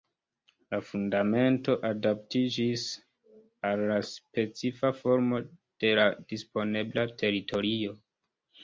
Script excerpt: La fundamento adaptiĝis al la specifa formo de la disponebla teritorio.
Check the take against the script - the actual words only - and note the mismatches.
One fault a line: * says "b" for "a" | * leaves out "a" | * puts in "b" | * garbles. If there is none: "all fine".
all fine